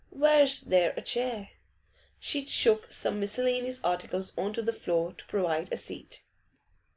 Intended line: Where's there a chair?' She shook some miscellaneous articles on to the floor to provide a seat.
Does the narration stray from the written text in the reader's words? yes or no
no